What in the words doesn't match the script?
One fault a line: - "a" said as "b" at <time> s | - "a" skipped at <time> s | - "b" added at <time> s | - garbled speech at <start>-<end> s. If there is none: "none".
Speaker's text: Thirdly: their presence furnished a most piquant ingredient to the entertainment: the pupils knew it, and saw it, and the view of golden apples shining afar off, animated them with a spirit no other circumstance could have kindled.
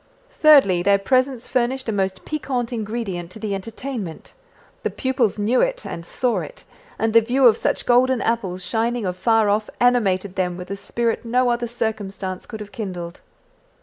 - "such" added at 7.6 s